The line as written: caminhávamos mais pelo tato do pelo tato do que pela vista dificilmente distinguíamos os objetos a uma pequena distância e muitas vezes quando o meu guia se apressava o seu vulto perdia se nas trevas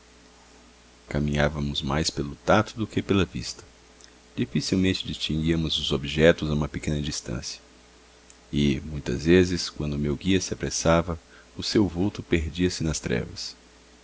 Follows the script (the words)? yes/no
no